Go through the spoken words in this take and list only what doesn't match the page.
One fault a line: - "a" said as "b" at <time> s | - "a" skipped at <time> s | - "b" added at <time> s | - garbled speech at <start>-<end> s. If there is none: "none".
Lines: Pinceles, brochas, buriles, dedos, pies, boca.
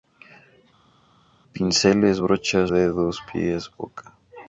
- "buriles" skipped at 2.7 s